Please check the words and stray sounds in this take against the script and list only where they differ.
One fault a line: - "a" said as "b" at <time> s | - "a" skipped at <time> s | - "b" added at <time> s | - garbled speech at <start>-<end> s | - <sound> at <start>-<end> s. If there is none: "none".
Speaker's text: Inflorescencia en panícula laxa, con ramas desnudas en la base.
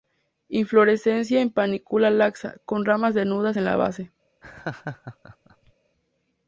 - laugh at 4.4-5.7 s